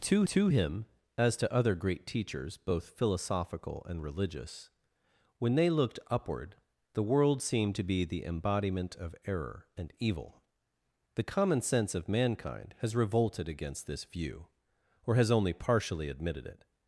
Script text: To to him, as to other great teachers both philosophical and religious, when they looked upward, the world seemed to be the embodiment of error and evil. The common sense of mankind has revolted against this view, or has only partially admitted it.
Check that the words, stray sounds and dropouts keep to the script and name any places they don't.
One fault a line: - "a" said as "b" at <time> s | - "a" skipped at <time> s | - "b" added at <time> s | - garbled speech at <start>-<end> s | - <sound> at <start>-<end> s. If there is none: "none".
none